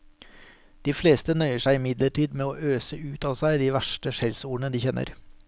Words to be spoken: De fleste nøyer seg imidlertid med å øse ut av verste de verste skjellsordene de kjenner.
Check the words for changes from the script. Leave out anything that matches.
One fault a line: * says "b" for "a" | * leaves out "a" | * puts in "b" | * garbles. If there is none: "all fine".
* says "seg" for "verste"